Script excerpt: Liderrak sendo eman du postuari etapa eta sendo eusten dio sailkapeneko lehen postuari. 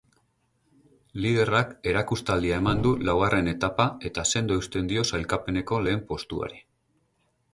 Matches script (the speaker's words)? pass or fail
fail